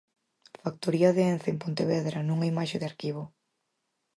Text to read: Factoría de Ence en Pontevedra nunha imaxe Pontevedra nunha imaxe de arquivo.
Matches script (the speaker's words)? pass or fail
fail